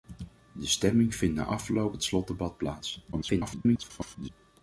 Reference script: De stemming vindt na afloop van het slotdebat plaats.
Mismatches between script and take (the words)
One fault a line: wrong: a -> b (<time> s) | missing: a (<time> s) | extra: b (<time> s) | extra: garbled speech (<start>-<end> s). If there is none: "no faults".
missing: van (2.0 s)
extra: garbled speech (3.1-4.3 s)